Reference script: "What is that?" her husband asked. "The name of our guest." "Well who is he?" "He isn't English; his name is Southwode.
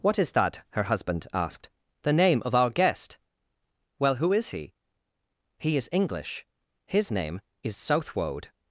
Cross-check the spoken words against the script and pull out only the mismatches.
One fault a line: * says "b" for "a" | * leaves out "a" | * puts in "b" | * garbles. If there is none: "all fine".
* says "is" for "isn't"